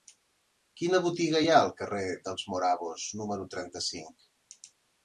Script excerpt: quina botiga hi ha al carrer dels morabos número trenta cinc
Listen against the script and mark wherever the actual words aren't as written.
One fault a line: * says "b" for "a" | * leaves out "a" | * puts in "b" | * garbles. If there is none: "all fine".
all fine